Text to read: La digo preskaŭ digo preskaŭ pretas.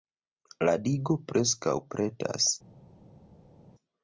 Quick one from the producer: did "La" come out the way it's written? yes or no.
yes